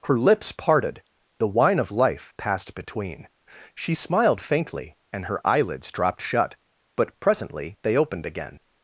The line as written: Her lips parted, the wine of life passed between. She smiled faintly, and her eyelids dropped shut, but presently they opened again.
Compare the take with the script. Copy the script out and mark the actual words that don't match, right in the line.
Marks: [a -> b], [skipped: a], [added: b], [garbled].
Her lips parted, the wine of life passed between. She smiled faintly, and her eyelids dropped shut, but presently they opened again.